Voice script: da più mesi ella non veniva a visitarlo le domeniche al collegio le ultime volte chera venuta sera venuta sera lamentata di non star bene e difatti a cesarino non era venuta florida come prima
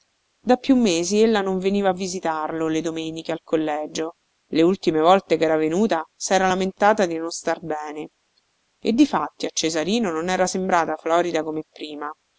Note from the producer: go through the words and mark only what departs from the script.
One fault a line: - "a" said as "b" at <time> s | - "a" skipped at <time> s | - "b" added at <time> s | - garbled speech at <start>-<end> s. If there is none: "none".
- "venuta sera" skipped at 6.5 s
- "venuta" said as "sembrata" at 10.5 s